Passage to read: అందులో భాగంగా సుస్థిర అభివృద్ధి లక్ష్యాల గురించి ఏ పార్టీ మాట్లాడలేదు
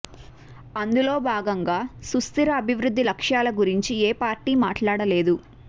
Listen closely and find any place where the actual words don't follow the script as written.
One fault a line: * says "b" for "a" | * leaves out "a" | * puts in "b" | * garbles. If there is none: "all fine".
all fine